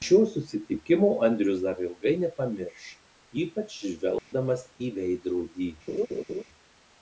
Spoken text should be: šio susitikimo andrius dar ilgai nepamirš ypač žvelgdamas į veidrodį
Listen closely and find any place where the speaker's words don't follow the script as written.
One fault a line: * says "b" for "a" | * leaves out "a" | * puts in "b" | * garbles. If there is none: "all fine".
all fine